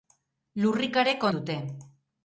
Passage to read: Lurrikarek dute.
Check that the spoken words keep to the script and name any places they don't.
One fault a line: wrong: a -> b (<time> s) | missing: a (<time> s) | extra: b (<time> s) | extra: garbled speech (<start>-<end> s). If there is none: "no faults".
no faults